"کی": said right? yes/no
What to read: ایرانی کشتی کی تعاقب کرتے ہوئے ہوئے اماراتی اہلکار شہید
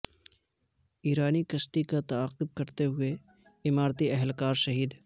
no